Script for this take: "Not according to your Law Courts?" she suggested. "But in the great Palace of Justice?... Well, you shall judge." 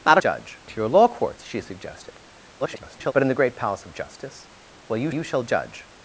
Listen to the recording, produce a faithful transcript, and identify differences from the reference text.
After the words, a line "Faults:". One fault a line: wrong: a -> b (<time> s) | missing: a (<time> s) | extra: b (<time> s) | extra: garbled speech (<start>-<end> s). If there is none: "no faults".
"Not judge to your Law Courts?" she suggested. [garbled] "But in the great Palace of Justice?... Well, you you shall judge."
Faults:
wrong: according -> judge (0.2 s)
extra: garbled speech (2.6-3.1 s)
extra: you (5.1 s)